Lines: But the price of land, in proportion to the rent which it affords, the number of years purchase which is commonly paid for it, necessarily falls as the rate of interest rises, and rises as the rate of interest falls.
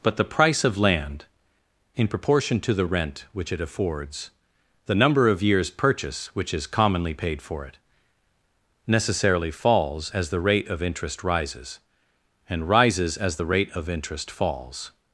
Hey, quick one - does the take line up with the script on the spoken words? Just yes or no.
yes